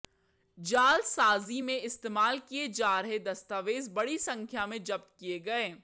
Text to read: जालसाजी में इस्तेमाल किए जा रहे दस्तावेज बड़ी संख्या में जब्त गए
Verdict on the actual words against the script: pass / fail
fail